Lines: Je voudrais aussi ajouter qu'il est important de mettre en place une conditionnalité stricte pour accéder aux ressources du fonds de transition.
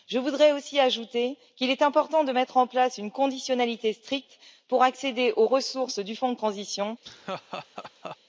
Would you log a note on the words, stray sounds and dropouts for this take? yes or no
yes